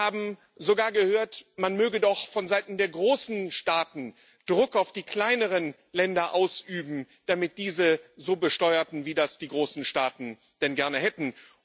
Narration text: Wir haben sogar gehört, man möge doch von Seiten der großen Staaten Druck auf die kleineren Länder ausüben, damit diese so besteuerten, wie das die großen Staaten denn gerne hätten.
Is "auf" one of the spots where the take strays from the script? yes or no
no